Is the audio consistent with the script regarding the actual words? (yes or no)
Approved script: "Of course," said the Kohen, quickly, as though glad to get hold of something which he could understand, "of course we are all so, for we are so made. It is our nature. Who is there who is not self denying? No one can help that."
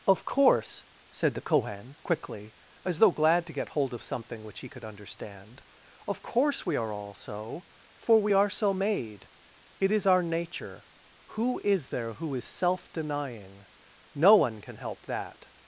no